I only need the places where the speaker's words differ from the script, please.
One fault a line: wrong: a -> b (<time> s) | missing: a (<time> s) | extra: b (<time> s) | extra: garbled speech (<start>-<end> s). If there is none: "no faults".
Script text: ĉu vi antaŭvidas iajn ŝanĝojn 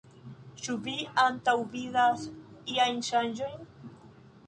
no faults